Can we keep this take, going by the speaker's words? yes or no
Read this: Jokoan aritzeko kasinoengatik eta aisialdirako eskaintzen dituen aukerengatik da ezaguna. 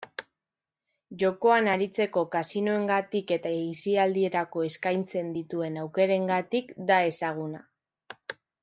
yes